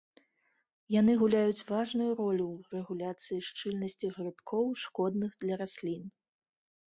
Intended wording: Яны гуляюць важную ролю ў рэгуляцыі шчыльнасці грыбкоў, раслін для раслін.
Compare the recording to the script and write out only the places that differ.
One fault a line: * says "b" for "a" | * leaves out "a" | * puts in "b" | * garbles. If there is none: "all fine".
* says "шкодных" for "раслін"